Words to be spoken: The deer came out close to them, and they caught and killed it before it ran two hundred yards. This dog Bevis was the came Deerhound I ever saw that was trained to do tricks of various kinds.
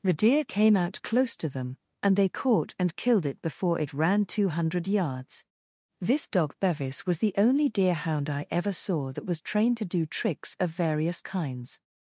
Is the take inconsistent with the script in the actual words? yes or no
yes